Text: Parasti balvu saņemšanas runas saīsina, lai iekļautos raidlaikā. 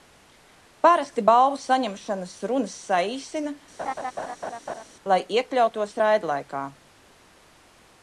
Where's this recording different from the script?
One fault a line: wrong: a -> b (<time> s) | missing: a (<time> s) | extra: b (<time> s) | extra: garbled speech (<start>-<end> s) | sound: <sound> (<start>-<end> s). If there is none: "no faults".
sound: laugh (3.8-4.8 s)